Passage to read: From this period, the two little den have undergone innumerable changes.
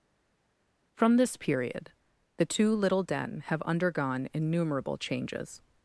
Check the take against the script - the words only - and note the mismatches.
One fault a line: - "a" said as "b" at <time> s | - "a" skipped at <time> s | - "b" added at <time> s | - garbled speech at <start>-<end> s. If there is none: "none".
none